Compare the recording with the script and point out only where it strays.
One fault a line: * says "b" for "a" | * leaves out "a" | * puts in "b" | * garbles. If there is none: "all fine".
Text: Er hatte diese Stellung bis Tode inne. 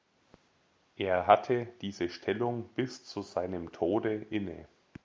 * puts in "zu seinem"